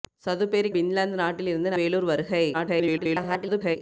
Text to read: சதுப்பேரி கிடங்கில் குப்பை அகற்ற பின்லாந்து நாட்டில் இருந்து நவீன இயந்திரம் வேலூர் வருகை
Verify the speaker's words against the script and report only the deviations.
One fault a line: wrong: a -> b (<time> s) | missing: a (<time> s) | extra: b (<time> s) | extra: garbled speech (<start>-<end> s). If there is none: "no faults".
missing: கிடங்கில் குப்பை அகற்ற (0.7 s)
missing: நவீன இயந்திரம் (1.8 s)
extra: garbled speech (2.5-3.8 s)